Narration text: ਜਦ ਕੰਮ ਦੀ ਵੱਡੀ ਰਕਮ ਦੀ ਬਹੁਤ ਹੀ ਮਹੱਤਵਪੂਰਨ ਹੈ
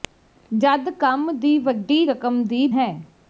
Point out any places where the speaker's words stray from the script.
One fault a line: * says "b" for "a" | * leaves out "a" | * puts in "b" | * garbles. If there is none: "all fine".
* leaves out "ਬਹੁਤ ਹੀ ਮਹੱਤਵਪੂਰਨ"